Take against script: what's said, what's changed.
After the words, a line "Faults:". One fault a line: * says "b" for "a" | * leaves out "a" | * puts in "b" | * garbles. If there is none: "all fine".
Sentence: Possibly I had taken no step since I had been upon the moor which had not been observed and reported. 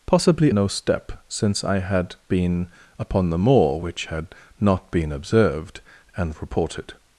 Possibly no step since I had been upon the moor which had not been observed and reported.
Faults:
* leaves out "I had taken"